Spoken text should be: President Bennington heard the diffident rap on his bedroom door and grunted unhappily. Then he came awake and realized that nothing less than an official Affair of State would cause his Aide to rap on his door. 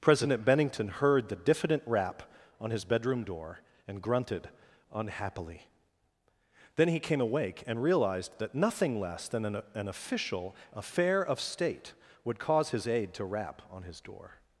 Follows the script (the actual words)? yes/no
no